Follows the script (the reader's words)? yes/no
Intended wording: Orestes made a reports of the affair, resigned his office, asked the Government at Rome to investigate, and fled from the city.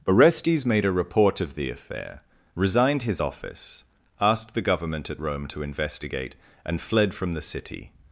no